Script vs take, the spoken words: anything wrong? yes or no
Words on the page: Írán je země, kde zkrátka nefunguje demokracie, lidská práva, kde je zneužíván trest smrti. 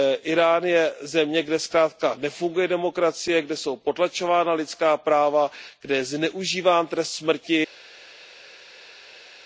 yes